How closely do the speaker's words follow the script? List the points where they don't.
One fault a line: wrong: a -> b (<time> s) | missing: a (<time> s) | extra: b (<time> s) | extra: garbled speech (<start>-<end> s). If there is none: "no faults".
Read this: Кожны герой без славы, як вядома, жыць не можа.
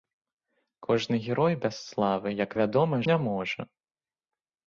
missing: жыць (3.0 s)